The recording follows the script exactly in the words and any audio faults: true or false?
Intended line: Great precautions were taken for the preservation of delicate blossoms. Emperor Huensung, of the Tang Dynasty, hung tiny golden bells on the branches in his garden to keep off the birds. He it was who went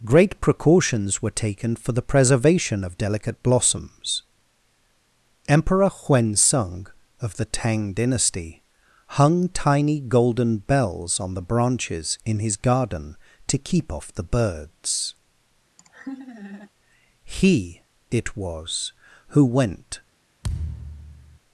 false